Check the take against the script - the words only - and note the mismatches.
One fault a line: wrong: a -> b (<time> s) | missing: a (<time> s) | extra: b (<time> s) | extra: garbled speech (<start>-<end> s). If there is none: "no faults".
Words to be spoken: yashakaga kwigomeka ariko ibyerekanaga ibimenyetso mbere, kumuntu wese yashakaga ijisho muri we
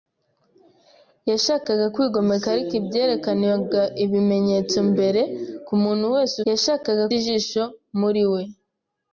no faults